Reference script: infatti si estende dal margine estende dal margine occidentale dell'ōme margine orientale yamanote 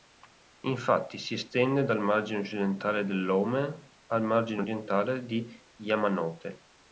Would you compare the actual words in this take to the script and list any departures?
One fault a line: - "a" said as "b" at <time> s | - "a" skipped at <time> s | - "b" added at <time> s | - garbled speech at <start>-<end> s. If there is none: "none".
- "estende dal margine" skipped at 2.4 s
- "al" added at 4.1 s
- "di" added at 5.2 s